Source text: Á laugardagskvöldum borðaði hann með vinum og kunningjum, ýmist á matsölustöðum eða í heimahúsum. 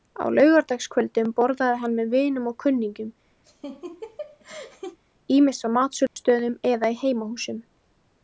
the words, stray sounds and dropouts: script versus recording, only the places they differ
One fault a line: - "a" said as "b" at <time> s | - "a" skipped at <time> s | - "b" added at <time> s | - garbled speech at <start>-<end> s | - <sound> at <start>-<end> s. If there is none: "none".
- laugh at 3.4-5.0 s
- dropout at 6.1-6.2 s